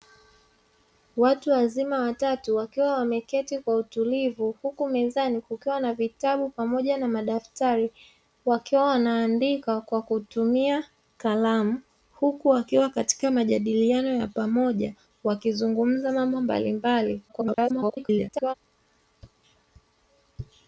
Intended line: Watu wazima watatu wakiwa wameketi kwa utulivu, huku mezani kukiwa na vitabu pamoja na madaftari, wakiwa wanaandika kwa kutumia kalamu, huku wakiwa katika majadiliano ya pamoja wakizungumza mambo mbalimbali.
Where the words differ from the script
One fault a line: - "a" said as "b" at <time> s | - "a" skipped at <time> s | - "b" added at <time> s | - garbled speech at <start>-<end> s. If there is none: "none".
- garbled speech at 17.3-18.5 s